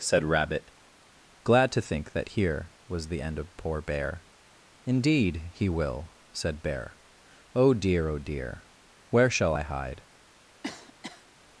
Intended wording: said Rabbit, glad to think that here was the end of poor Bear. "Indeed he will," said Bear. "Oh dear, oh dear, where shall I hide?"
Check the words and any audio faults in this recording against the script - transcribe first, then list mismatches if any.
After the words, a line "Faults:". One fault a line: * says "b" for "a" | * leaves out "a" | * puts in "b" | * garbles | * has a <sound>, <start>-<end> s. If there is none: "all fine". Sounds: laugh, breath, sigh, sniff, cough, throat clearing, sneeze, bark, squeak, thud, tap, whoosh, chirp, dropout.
said Rabbit, glad to think that here was the end of poor Bear. "Indeed he will," said Bear. "Oh dear, oh dear, where shall I hide?"
Faults:
* has a cough, 10.6-11.3 s